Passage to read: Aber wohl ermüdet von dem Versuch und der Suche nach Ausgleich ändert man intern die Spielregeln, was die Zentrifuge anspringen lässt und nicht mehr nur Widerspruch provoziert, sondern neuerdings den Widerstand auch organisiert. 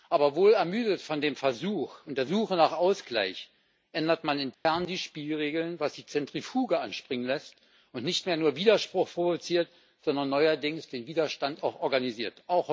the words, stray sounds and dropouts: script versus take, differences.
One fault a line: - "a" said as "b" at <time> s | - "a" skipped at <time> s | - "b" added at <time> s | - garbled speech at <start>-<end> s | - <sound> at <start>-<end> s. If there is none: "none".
- dropout at 4.5-4.7 s